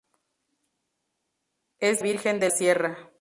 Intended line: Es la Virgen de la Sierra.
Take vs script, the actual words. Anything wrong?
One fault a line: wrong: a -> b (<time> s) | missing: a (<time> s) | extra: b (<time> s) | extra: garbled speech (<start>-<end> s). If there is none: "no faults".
missing: la (2.0 s)
missing: la (2.5 s)